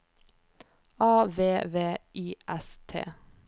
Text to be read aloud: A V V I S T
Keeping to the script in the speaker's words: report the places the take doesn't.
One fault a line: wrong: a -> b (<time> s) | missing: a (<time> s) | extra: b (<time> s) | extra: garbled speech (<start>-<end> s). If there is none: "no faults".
no faults